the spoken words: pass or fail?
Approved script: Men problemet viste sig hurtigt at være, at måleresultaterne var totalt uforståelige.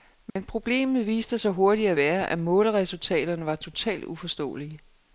pass